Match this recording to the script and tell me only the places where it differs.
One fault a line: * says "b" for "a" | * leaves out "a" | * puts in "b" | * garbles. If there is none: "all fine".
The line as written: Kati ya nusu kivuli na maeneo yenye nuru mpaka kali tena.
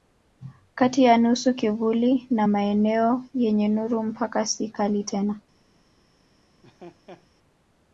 * puts in "si"